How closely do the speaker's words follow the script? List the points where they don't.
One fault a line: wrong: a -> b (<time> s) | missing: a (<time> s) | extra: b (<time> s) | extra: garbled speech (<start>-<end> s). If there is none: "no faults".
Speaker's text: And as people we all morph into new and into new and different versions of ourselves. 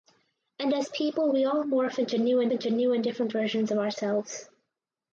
no faults